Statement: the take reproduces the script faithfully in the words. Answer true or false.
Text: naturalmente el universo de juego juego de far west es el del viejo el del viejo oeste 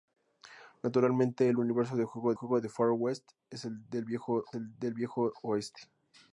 true